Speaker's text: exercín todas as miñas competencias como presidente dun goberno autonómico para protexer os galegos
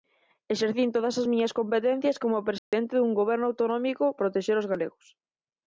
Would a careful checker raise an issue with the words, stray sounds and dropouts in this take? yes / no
yes